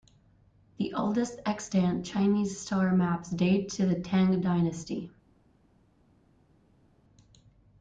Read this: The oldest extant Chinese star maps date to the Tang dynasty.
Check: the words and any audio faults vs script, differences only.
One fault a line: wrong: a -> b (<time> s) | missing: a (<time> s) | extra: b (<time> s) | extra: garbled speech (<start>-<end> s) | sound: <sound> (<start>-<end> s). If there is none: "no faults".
no faults